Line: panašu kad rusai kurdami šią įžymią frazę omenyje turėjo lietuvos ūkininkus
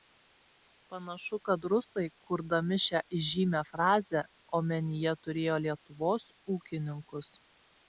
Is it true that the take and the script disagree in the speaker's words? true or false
false